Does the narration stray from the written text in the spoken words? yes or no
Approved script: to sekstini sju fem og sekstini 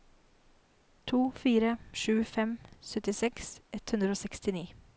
yes